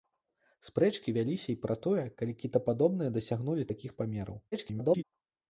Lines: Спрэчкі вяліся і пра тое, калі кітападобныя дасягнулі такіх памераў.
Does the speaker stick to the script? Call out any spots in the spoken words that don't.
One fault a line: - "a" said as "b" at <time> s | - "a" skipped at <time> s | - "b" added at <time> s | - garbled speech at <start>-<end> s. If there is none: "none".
- garbled speech at 4.5-5.0 s